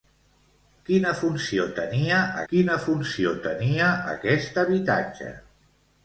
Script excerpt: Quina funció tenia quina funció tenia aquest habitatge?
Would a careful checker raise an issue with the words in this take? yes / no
no